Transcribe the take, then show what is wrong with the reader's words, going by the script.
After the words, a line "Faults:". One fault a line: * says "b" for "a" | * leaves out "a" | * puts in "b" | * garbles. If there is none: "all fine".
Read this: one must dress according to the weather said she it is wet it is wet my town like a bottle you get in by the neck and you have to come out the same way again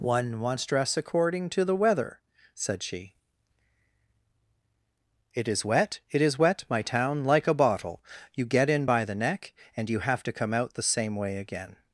one must dress according to the weather said she it is wet it is wet my town like a bottle you get in by the neck and you have to come out the same way again
Faults:
all fine